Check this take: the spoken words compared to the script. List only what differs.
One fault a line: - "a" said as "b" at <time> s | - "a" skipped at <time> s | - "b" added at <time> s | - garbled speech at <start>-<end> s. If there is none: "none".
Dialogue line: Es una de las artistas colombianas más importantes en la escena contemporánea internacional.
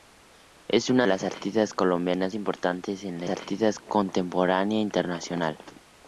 - "de" skipped at 1.1 s
- "más" skipped at 2.3 s
- "escena" said as "artistas" at 3.3 s